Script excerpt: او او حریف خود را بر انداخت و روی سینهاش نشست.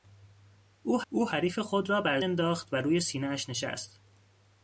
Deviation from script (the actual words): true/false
false